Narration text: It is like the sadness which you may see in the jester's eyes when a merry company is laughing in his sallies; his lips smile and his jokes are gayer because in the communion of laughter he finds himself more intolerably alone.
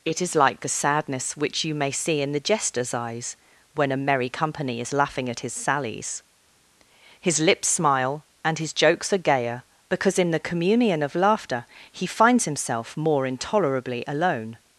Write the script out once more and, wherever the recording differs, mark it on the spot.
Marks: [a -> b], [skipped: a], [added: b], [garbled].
It is like the sadness which you may see in the jester's eyes when a merry company is laughing [in -> at] his sallies; his lips smile and his jokes are gayer because in the communion of laughter he finds himself more intolerably alone.